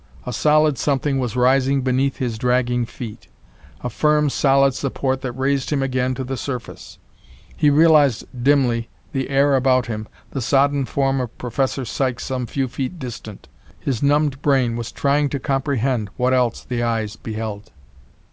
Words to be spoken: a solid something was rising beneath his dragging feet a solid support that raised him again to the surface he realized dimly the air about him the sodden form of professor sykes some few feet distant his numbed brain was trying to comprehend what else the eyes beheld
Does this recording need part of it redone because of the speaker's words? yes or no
yes